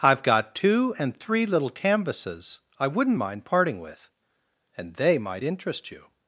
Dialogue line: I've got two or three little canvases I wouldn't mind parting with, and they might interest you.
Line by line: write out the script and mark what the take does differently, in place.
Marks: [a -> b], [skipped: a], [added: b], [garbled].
I've got two [or -> and] three little canvases I wouldn't mind parting with, and they might interest you.